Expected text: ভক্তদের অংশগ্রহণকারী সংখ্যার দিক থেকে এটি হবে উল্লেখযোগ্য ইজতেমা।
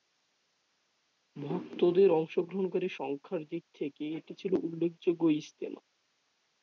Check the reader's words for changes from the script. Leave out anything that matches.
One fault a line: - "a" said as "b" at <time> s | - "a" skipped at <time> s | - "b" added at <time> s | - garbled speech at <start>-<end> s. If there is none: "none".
- "হবে" said as "ছিল" at 4.3 s